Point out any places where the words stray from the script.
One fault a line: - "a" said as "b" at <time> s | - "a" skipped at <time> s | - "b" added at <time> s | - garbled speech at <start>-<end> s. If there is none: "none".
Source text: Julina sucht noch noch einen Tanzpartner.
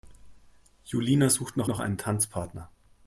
none